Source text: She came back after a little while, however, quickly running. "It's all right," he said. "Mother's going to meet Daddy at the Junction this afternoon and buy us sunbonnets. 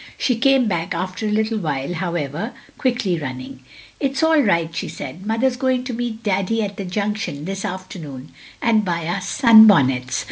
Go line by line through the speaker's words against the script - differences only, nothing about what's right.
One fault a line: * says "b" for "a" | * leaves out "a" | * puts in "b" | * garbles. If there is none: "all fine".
* says "she" for "he"